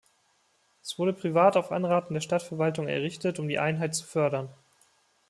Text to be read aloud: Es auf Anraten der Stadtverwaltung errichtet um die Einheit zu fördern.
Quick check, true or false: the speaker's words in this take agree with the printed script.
false